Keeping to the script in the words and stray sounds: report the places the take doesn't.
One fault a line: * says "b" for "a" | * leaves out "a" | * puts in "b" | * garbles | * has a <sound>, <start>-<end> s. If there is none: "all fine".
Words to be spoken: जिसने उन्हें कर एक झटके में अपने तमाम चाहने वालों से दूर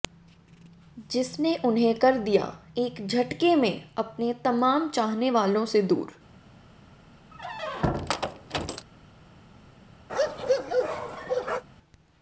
* puts in "दिया"
* has a squeak, 7.3-8.9 s
* has a bark, 10.1-11.6 s